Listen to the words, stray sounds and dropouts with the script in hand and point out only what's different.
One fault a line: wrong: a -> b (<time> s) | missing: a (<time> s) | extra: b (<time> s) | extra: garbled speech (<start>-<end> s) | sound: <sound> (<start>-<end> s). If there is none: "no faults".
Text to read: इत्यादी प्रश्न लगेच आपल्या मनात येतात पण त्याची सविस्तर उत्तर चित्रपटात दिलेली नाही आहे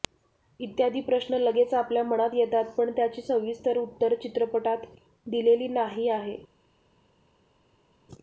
no faults